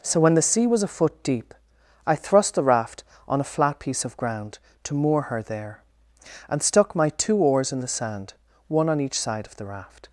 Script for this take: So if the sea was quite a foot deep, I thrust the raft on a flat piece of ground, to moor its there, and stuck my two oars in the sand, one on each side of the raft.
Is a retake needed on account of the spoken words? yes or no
yes